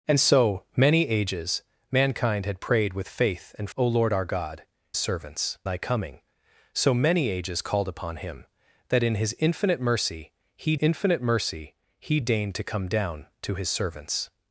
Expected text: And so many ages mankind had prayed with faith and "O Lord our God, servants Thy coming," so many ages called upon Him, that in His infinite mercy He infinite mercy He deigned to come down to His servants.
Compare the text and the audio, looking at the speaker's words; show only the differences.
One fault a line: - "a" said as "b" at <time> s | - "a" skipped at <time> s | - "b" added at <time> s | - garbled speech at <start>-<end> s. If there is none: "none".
none